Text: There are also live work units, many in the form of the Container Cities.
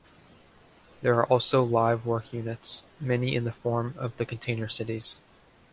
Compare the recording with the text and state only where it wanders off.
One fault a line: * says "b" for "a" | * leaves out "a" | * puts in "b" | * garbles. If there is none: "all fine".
all fine